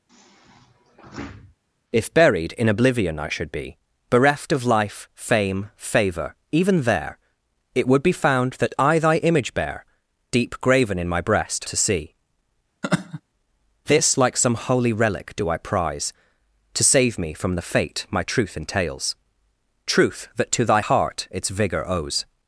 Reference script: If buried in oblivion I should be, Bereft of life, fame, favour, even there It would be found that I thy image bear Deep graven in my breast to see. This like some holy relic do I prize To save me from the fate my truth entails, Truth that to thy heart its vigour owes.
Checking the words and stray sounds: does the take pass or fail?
fail